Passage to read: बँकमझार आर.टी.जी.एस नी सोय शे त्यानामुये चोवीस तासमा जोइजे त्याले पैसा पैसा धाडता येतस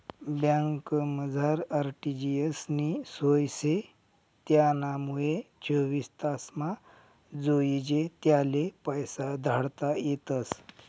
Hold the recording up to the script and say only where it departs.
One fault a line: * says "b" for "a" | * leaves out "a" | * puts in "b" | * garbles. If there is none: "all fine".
* leaves out "पैसा"